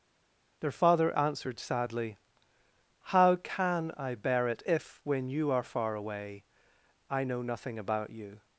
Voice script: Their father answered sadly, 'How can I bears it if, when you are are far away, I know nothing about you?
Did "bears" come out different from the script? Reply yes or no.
yes